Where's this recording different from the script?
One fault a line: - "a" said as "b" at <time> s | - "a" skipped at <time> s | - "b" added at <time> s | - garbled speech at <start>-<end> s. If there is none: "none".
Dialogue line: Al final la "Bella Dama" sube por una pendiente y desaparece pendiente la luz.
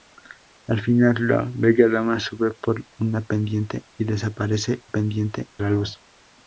none